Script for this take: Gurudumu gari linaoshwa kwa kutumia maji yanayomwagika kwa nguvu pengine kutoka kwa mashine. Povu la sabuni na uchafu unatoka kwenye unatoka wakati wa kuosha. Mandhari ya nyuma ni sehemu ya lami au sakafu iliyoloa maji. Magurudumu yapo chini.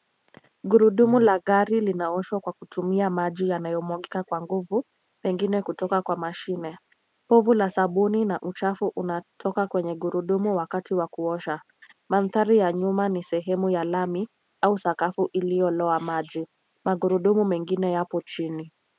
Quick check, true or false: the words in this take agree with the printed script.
false